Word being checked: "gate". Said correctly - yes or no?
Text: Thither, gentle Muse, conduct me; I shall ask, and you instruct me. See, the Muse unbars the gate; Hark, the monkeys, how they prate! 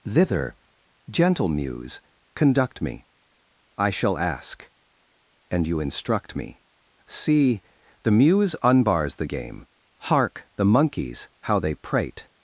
no